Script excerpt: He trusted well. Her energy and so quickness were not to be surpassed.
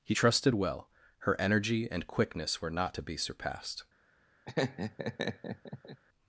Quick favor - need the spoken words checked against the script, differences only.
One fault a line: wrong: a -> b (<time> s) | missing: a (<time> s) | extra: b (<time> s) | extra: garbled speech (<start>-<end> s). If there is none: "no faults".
missing: so (2.1 s)